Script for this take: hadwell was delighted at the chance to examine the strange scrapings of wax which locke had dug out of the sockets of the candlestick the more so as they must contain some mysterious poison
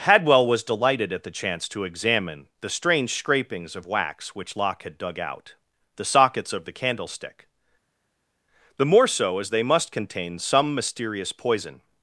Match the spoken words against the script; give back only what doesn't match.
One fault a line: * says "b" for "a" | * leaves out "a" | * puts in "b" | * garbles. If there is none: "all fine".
* leaves out "of"